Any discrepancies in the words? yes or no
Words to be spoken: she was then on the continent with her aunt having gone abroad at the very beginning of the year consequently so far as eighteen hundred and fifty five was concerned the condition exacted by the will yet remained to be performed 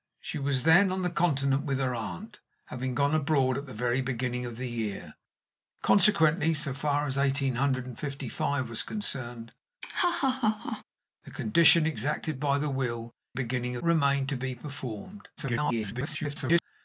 yes